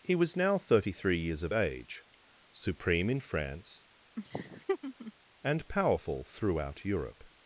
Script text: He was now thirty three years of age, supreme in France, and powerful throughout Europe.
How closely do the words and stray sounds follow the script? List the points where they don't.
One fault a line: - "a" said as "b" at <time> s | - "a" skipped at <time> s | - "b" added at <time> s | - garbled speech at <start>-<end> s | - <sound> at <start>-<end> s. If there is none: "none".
- laugh at 4.2-5.1 s